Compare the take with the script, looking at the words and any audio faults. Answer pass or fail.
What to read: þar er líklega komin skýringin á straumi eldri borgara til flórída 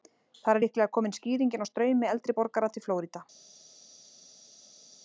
pass